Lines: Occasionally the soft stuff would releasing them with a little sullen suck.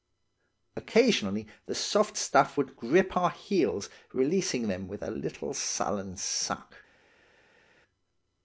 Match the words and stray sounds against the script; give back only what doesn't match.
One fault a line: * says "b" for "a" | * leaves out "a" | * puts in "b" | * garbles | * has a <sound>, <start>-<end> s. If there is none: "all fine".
* puts in "grip our heels"